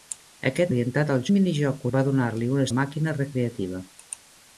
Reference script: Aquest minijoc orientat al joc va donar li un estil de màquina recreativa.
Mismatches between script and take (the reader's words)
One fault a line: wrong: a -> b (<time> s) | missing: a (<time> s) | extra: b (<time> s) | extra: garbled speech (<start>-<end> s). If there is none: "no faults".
missing: minijoc (0.7 s)
wrong: joc -> minijoc (1.3 s)
missing: estil (2.7 s)